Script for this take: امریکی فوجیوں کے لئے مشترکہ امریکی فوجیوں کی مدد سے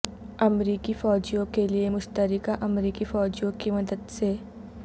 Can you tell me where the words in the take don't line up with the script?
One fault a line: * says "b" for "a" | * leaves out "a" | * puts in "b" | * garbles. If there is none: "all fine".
all fine